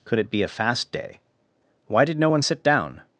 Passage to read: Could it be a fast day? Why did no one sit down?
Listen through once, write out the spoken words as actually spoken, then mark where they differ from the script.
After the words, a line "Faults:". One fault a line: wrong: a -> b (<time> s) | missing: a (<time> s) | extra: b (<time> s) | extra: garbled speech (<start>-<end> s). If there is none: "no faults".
Could it be a fast day? Why did no one sit down?
Faults:
no faults